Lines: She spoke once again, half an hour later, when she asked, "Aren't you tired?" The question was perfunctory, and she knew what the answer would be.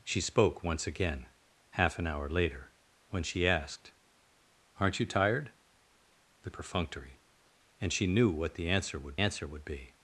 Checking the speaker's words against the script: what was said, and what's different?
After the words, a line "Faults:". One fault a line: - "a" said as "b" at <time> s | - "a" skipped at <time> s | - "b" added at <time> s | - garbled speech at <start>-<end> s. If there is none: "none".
She spoke once again, half an hour later, when she asked, "Aren't you tired?" The perfunctory, and she knew what the answer would answer would be.
Faults:
- "question was" skipped at 6.5 s
- "answer would" added at 9.2 s